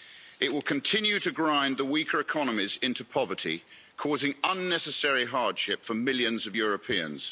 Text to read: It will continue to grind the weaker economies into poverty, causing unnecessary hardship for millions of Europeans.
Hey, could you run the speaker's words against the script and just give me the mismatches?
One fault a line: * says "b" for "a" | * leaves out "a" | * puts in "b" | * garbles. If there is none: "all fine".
all fine